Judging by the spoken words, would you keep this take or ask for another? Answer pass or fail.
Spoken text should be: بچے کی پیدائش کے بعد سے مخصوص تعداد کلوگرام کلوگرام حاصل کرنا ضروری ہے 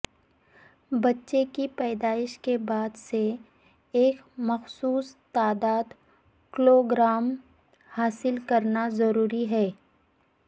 fail